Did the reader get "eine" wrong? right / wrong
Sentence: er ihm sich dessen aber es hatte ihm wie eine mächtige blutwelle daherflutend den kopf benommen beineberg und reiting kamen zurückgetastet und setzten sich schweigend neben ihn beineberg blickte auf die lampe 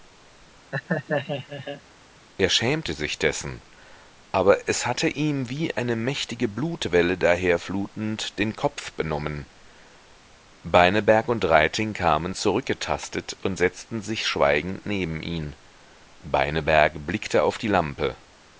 right